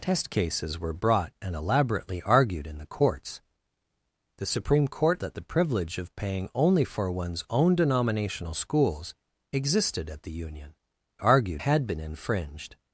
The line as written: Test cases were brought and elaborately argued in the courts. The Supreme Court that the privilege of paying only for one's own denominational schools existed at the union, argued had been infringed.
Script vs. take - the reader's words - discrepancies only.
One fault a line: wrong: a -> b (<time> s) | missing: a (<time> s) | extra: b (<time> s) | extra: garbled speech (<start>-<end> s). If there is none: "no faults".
no faults